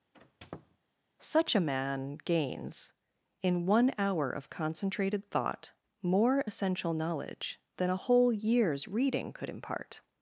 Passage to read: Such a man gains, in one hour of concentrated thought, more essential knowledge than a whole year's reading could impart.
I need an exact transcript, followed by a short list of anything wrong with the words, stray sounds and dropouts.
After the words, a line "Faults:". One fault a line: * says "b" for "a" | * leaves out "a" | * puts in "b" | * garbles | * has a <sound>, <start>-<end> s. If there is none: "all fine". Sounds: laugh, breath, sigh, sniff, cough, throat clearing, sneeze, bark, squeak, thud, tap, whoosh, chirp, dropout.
Such a man gains, in one hour of concentrated thought, more essential knowledge than a whole year's reading could impart.
Faults:
* has a squeak, 0.1-0.8 s